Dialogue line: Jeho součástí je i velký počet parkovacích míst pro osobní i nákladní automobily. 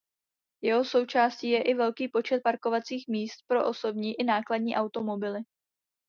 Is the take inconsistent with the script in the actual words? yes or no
no